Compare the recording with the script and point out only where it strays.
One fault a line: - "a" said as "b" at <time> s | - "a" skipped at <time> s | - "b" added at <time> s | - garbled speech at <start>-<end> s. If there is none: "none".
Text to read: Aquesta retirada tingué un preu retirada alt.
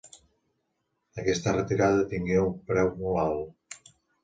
- "retirada" said as "molt" at 3.0 s